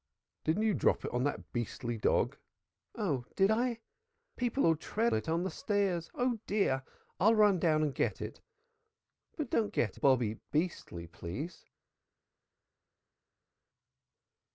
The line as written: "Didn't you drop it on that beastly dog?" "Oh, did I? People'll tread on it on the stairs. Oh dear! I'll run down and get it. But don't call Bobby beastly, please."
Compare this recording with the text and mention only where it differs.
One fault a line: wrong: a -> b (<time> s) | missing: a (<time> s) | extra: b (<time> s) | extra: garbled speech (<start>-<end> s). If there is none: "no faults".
missing: on (5.1 s)
wrong: call -> get (9.7 s)